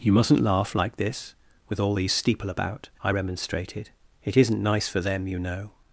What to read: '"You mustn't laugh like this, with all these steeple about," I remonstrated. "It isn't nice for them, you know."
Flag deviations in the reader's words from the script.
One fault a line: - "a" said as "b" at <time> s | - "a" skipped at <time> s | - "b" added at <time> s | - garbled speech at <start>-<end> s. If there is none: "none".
none